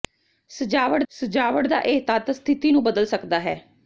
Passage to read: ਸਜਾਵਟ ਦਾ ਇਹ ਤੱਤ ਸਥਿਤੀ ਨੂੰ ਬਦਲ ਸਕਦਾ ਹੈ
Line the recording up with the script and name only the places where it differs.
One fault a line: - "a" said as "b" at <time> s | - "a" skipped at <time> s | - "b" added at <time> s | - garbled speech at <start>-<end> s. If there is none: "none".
- "ਸਜਾਵਟ" added at 1.1 s